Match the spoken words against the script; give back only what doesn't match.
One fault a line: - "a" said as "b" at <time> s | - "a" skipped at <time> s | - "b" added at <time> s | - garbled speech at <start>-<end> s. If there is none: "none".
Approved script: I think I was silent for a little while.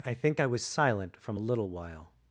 - "for" said as "from" at 1.2 s